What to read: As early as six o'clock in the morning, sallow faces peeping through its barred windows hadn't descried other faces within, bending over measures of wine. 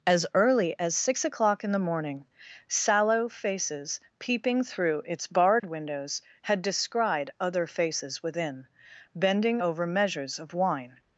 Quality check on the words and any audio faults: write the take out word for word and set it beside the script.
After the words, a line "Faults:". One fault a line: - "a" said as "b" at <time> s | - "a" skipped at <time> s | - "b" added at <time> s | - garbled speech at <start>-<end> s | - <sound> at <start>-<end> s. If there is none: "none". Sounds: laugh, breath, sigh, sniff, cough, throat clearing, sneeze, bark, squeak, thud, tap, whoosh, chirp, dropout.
As early as six o'clock in the morning, sallow faces peeping through its barred windows had descried other faces within, bending over measures of wine.
Faults:
- dropout at 5.6-5.6 s
- "hadn't" said as "had" at 6.4 s